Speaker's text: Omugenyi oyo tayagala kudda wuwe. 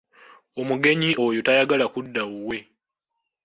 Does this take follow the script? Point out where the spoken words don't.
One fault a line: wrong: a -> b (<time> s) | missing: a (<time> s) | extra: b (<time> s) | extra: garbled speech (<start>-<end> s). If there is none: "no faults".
no faults